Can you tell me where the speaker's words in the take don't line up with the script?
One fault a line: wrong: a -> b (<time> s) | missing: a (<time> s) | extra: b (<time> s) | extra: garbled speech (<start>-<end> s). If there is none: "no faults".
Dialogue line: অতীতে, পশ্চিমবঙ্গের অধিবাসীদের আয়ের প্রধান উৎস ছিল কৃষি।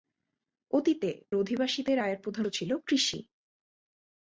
missing: পশ্চিমবঙ্গের (1.1 s)
missing: উৎস (2.4 s)